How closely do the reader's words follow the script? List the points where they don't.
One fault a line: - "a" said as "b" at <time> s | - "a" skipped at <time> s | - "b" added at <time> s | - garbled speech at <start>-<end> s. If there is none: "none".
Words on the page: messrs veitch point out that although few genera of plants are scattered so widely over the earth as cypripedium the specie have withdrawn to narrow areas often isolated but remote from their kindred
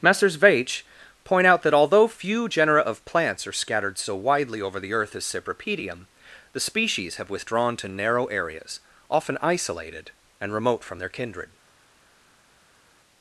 - "specie" said as "species" at 6.6 s
- "but" said as "and" at 10.4 s